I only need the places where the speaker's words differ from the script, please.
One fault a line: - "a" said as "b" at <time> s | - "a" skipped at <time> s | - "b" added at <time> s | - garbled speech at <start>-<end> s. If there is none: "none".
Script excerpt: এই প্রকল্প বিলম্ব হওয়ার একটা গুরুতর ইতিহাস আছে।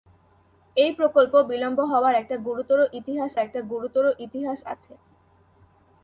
- "একটা গুরুতর ইতিহাস" added at 3.4 s